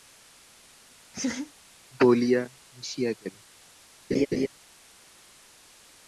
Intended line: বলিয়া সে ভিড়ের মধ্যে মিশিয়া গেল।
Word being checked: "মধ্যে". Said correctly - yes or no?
no